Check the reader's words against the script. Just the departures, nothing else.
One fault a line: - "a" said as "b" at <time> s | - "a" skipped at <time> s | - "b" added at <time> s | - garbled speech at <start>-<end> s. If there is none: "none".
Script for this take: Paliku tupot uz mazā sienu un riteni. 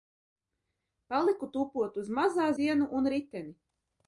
none